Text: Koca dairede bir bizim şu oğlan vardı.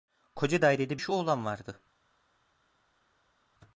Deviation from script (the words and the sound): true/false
true